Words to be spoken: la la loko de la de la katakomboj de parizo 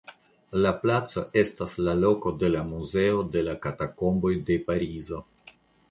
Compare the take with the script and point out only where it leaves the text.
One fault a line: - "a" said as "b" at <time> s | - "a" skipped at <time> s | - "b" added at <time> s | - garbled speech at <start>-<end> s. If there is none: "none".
- "placo estas" added at 0.8 s
- "muzeo" added at 2.7 s